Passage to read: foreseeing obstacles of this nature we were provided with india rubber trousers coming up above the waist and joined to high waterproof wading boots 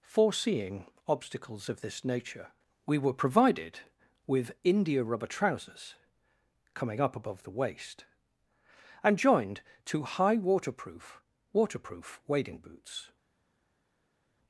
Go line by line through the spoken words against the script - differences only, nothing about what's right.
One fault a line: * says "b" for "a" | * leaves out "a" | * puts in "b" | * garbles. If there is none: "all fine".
* puts in "waterproof"